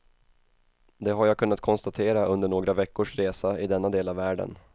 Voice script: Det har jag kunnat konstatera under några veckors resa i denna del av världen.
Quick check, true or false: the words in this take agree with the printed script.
true